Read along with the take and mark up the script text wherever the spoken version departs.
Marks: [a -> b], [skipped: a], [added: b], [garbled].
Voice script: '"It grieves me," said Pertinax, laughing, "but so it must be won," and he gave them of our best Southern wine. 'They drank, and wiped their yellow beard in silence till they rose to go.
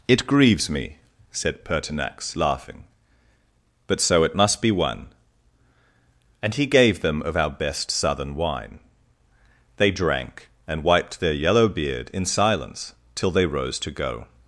'"It grieves me," said Pertinax, laughing, "but so it must be won," and he gave them of our best Southern wine. 'They drank, and wiped their yellow beard in silence till they rose to go.